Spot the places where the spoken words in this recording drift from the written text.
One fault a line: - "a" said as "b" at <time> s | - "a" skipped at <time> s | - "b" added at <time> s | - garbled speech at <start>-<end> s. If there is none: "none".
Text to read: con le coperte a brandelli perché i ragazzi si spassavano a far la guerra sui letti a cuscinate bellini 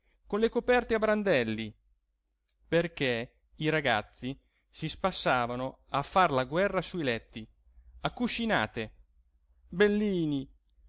none